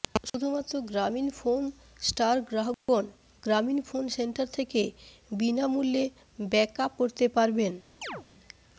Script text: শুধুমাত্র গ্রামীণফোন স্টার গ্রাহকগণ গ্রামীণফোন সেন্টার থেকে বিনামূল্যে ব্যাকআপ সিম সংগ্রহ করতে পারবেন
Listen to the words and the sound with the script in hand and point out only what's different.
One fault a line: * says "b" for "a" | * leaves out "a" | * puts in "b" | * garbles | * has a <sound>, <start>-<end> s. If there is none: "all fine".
* has a dropout, 2.7-2.9 s
* leaves out "সিম সংগ্রহ"
* has a chirp, 8.0-8.3 s